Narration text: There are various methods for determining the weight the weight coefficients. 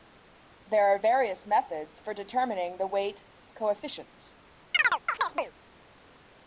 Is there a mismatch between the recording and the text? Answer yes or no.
yes